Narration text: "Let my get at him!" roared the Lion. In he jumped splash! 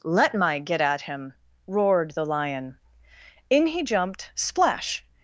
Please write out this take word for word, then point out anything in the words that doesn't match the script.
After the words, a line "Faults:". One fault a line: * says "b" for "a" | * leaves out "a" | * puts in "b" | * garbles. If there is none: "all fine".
"Let my get at him!" roared the Lion. In he jumped splash!
Faults:
all fine